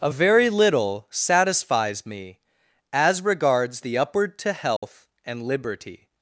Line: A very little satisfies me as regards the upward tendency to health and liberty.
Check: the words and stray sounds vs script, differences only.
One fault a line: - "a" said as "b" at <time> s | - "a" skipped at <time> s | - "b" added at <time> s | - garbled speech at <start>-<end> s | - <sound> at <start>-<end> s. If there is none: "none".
- "tendency" skipped at 4.4 s
- dropout at 4.8-4.8 s